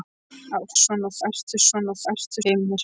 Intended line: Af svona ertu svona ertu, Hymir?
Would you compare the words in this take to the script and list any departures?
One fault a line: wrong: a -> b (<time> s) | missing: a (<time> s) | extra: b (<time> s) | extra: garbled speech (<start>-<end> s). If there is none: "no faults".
no faults